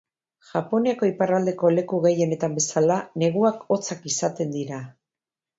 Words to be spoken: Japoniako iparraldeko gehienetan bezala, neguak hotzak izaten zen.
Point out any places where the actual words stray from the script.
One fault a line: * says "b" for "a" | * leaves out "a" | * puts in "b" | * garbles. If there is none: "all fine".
* puts in "leku"
* says "dira" for "zen"